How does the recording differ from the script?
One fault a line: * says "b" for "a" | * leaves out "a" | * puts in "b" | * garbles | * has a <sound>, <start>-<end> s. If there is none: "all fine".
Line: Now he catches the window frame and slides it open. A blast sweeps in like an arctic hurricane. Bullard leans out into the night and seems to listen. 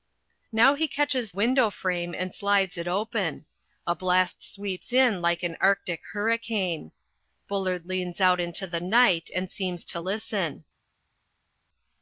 * leaves out "the"